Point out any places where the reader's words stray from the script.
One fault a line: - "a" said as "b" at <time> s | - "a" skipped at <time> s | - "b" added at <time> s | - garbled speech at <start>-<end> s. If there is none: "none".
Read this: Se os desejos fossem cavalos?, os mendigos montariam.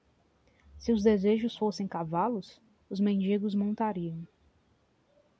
none